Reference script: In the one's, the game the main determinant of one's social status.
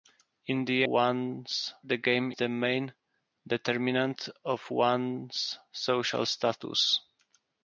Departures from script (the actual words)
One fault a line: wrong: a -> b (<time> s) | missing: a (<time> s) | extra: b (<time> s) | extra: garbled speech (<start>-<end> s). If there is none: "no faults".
no faults